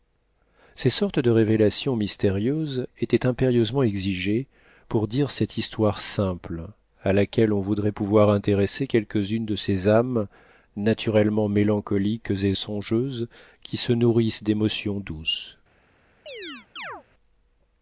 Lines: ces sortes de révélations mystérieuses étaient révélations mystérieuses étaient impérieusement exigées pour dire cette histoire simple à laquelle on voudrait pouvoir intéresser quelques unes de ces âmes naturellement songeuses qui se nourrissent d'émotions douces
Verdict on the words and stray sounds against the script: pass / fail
fail